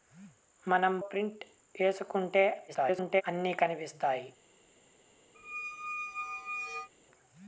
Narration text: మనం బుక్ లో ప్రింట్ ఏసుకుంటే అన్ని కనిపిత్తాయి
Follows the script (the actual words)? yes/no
no